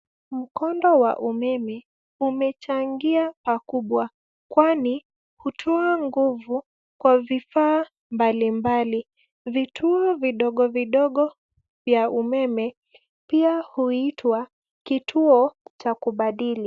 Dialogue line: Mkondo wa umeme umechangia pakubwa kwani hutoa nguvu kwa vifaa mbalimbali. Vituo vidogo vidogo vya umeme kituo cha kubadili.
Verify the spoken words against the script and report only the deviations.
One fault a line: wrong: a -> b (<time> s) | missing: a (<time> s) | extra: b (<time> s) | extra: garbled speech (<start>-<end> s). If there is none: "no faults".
extra: pia huitwa (13.3 s)